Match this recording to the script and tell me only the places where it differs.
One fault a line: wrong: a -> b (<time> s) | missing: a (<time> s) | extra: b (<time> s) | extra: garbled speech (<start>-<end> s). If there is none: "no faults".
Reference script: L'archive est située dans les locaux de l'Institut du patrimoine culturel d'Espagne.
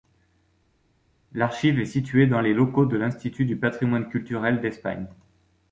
no faults